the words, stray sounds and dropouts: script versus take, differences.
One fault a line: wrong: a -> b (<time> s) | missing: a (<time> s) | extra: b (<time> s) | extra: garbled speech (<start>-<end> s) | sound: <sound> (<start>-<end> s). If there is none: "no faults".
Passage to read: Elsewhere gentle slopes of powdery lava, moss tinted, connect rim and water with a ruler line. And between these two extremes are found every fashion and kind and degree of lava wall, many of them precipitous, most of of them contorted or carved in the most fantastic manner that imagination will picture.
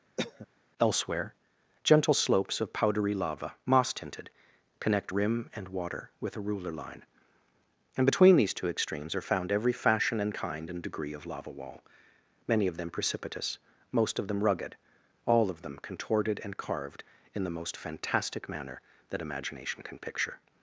sound: cough (0.2-0.5 s)
extra: them rugged all (14.3 s)
wrong: or -> and (16.4 s)
wrong: will -> can (19.8 s)